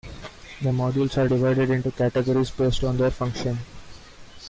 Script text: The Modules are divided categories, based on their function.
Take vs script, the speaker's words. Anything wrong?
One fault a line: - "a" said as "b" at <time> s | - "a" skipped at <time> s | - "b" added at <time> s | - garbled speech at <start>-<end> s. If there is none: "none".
- "into" added at 1.7 s